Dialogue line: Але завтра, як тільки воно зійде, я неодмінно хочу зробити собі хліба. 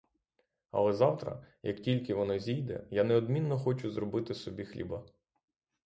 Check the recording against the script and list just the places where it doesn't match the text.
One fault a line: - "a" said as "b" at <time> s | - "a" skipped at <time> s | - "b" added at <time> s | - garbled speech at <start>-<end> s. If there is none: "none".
none